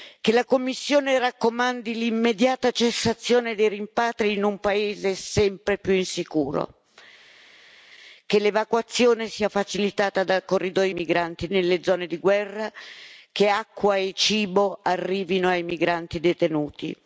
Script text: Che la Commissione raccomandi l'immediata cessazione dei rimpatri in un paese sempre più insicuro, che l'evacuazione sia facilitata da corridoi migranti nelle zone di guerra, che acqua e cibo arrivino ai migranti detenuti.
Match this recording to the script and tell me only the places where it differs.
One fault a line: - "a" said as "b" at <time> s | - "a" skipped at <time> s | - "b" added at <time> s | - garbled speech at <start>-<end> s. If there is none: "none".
none